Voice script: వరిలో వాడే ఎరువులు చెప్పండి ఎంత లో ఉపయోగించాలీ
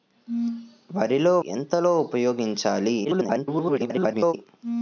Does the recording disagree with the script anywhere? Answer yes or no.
yes